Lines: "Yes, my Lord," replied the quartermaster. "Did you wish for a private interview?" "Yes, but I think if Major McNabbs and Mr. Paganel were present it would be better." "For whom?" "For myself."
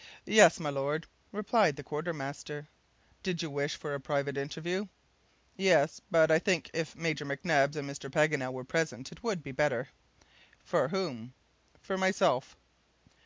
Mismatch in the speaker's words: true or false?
false